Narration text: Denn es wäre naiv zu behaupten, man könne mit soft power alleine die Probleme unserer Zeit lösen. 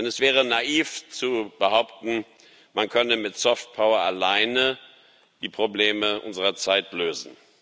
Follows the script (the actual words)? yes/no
yes